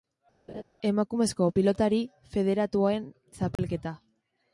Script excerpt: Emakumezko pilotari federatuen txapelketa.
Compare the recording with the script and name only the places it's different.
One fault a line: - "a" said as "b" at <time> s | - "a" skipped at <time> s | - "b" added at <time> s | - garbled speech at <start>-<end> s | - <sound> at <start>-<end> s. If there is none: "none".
- laugh at 0.5-0.6 s
- dropout at 3.6-3.6 s